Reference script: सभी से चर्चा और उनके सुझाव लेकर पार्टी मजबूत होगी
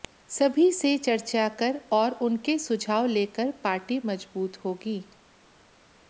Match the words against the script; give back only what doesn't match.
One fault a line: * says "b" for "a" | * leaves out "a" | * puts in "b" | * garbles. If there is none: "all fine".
* puts in "कर"